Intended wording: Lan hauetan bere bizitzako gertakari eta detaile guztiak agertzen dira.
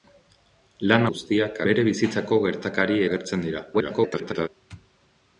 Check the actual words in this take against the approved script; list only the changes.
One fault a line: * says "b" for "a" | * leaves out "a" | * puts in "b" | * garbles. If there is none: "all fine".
* says "guztiak" for "hauetan"
* leaves out "eta detaile guztiak"
* garbles